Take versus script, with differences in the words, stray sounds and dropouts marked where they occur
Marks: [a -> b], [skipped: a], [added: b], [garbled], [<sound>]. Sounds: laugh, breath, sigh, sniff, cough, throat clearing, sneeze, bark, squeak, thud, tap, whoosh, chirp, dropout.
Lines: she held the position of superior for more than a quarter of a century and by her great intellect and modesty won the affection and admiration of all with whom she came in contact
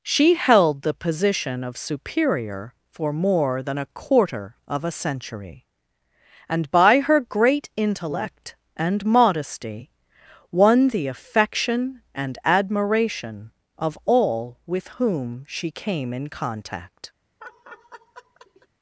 she held the position of superior for more than a quarter of a century and by her great intellect and modesty won the affection and admiration of all with whom she came in contact [laugh]